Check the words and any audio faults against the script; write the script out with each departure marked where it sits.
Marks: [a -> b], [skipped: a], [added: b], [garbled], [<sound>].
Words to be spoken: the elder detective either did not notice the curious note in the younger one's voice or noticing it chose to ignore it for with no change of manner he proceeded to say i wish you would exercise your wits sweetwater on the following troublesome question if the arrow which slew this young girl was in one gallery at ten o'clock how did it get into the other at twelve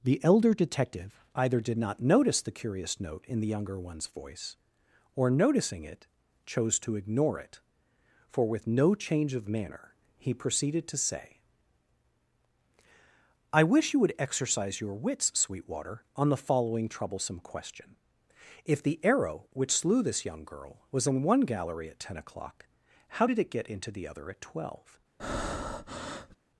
the elder detective either did not notice the curious note in the younger one's voice or noticing it chose to ignore it for with no change of manner he proceeded to say i wish you would exercise your wits sweetwater on the following troublesome question if the arrow which slew this young girl was in one gallery at ten o'clock how did it get into the other at twelve [breath]